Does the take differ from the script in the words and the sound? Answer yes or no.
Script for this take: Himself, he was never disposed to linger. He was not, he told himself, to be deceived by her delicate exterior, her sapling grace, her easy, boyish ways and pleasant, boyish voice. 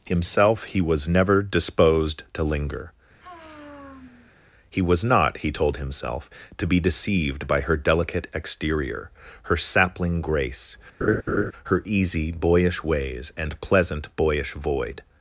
yes